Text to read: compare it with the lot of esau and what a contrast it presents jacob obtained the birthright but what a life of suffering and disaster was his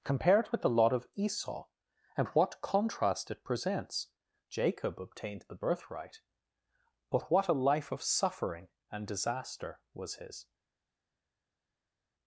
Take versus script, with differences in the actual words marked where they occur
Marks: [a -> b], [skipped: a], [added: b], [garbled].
compare it with the lot of esau and what [skipped: a] contrast it presents jacob obtained the birthright but what a life of suffering and disaster was his